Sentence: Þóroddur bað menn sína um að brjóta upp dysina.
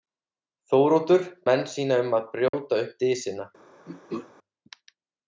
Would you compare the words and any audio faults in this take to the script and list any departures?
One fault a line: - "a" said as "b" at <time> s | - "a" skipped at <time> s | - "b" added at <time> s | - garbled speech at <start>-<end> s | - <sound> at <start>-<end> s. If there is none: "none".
- "bað" skipped at 1.3 s
- dropout at 2.5-2.5 s
- throat clearing at 3.9-4.3 s